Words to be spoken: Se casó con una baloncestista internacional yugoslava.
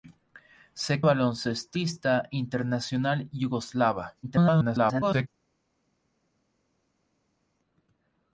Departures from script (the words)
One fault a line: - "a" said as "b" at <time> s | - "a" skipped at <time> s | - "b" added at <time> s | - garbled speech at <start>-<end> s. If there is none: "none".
- "casó con una" skipped at 1.0 s
- garbled speech at 4.2-5.3 s